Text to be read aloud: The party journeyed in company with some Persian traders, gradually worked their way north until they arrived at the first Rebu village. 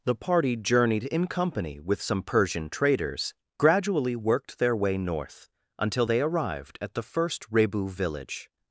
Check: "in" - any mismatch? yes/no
no